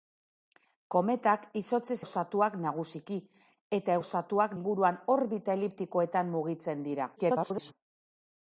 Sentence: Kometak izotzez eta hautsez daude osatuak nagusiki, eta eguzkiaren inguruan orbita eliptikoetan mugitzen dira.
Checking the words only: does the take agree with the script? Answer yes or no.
no